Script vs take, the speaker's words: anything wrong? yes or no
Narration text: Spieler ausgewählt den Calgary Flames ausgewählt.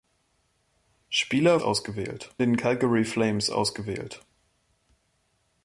no